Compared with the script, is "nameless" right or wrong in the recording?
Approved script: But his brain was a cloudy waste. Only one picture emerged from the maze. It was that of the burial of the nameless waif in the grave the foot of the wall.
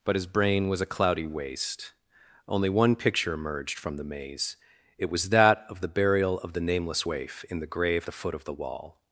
right